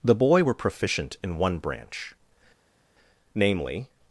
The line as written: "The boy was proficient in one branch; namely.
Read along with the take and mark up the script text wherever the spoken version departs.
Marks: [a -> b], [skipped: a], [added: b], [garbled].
"The boy [was -> were] proficient in one branch; namely.